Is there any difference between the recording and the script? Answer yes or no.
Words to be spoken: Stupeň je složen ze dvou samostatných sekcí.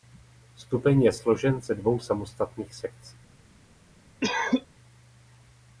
no